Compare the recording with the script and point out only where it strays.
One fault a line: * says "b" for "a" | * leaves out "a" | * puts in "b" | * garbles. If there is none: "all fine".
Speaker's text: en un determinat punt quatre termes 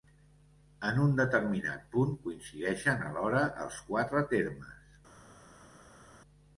* puts in "coincideixen alhora els"